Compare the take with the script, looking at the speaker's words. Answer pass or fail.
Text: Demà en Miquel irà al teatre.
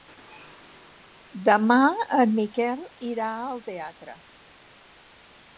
pass